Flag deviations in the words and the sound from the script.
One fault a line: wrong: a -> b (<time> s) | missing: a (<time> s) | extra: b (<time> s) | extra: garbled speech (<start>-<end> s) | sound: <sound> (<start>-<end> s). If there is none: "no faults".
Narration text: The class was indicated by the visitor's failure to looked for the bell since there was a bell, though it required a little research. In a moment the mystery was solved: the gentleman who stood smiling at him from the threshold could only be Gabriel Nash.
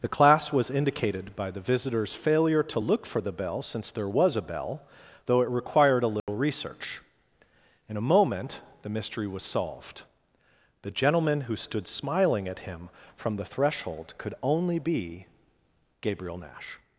wrong: looked -> look (2.8 s)
sound: dropout (6.2-6.3 s)